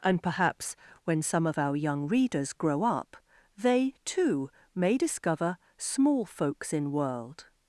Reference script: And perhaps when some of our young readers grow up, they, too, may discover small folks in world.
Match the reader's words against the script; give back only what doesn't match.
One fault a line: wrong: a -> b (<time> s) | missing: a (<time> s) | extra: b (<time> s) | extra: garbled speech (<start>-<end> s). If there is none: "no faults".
no faults